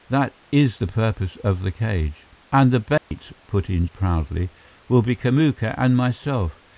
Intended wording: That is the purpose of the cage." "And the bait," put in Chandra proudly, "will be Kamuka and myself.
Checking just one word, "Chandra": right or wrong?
wrong